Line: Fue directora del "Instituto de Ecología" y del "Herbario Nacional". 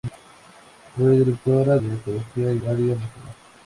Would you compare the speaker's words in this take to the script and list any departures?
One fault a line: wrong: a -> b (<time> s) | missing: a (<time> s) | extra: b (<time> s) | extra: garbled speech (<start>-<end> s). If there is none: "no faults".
missing: del Instituto (1.8 s)
missing: del (2.6 s)